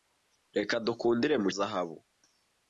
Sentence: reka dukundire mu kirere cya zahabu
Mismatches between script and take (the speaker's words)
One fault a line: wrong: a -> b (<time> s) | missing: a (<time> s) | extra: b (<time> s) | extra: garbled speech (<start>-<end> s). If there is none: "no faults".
missing: kirere cya (1.5 s)